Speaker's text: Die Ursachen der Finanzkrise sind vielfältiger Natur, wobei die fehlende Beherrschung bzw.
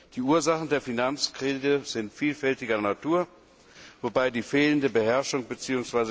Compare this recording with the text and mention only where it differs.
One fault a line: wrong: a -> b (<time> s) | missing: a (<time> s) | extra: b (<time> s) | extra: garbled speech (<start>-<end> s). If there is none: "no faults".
no faults